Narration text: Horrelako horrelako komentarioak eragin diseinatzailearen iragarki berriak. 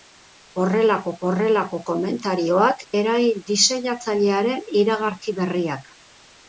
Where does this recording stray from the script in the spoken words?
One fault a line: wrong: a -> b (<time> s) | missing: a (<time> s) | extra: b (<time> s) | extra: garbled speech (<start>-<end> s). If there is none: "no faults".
no faults